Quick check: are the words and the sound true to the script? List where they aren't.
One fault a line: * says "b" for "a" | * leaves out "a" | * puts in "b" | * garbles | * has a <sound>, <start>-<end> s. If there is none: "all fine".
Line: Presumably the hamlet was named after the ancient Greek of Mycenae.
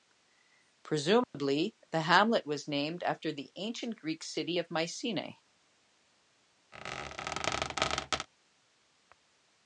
* has a dropout, 1.2-1.3 s
* puts in "city"
* has a squeak, 6.7-8.3 s